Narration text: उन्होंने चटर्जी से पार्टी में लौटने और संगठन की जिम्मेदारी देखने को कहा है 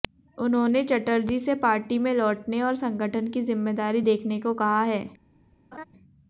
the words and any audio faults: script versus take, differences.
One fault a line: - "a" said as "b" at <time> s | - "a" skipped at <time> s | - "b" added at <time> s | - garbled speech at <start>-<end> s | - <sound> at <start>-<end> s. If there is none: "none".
- laugh at 5.7-5.8 s